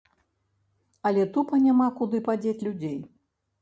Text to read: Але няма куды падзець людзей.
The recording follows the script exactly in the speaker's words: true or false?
false